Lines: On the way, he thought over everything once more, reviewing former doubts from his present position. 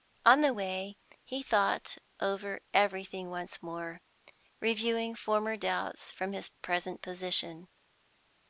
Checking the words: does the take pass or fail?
pass